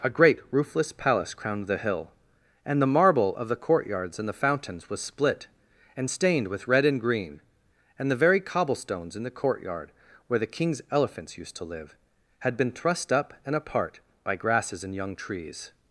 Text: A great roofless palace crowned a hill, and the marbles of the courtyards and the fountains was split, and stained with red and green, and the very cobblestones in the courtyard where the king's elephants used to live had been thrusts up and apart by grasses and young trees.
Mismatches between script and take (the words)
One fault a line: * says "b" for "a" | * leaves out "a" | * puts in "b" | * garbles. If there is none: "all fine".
* says "the" for "a"
* says "marble" for "marbles"
* says "thrust" for "thrusts"